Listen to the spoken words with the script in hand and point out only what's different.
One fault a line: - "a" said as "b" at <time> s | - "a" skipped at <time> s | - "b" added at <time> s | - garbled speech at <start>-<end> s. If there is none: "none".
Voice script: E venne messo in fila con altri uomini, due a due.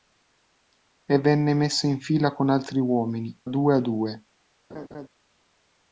none